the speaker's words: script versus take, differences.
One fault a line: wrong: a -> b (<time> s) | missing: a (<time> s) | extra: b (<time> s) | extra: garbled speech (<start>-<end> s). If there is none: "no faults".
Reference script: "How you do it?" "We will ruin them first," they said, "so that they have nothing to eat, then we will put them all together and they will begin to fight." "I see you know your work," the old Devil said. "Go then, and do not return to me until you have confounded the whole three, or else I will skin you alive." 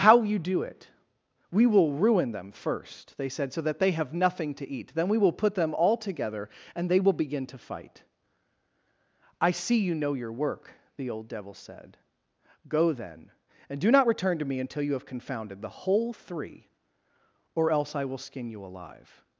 no faults